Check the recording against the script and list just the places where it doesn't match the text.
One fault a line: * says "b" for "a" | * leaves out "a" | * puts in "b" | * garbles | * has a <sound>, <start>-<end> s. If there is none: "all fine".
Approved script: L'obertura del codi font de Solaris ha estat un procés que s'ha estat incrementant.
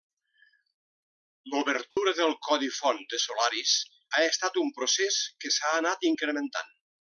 * has a dropout, 1.9-2.0 s
* says "anat" for "estat"